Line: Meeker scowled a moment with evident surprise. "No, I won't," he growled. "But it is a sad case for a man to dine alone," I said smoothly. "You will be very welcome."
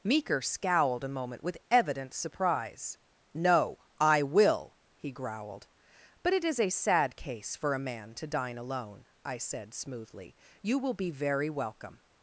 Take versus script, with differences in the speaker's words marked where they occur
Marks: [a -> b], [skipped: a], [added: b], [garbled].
Meeker scowled a moment with evident surprise. "No, I [won't," -> will] he growled. "But it is a sad case for a man to dine alone," I said smoothly. "You will be very welcome."